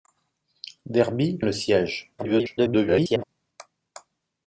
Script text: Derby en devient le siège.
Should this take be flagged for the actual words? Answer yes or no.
yes